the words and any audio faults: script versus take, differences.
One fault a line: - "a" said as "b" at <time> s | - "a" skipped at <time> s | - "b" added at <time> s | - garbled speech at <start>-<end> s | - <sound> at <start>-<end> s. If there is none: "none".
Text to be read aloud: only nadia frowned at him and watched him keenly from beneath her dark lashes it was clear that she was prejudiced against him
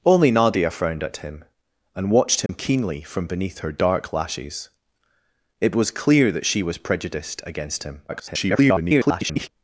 - dropout at 2.5-2.5 s
- garbled speech at 8.1-9.5 s